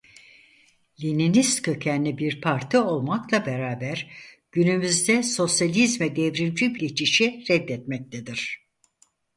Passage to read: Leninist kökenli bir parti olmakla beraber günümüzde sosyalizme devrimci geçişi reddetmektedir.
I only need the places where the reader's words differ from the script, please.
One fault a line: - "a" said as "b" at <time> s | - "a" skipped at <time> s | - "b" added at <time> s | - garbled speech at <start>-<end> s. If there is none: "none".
none